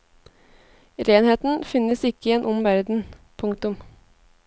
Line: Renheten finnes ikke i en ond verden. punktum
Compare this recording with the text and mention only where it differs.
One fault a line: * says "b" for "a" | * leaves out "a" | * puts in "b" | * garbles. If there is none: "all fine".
all fine